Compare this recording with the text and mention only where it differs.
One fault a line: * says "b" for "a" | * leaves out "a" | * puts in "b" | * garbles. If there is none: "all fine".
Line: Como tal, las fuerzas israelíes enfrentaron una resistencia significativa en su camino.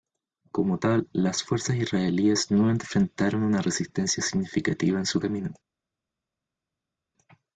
* puts in "no"